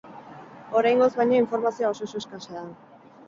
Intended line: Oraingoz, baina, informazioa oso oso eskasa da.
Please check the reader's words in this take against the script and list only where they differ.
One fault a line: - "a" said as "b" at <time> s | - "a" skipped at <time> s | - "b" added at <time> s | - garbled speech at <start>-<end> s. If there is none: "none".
none